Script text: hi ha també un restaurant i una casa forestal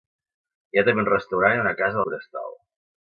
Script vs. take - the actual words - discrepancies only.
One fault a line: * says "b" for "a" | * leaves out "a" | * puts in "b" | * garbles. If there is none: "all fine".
all fine